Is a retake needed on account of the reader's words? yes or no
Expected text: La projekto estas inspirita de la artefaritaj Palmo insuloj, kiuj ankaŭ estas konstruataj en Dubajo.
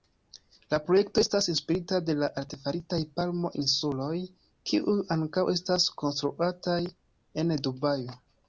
no